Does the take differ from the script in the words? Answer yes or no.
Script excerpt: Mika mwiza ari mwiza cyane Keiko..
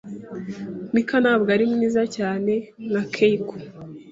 yes